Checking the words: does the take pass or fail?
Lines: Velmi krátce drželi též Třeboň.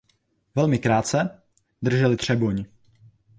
fail